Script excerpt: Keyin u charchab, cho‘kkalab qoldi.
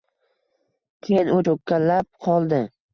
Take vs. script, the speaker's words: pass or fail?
fail